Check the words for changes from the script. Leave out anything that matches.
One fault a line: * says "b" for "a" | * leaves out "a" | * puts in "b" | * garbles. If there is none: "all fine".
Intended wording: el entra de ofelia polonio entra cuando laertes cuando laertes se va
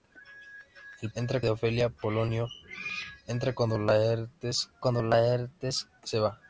all fine